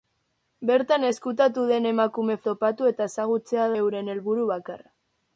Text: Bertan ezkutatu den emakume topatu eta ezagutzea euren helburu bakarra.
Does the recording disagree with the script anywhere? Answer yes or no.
no